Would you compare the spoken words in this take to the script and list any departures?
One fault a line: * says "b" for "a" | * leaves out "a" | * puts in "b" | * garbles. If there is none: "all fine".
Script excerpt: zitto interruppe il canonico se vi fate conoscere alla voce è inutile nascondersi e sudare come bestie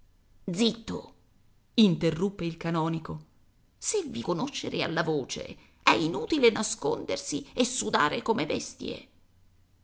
* leaves out "fate"